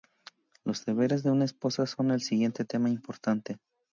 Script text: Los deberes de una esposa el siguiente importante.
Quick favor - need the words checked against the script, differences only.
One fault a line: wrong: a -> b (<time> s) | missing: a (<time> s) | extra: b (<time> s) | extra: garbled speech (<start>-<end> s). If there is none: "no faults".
extra: son (1.9 s)
extra: tema (2.6 s)